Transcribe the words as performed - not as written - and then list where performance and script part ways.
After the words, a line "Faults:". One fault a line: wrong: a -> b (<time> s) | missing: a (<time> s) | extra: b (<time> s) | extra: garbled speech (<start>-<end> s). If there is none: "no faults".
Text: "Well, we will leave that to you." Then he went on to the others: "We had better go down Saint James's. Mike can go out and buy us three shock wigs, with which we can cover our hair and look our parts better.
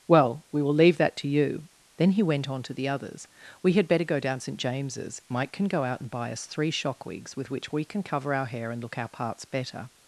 "Well, we will leave that to you." Then he went on to the others: "We had better go down Saint James's. Mike can go out and buy us three shock wigs, with which we can cover our hair and look our parts better.
Faults:
no faults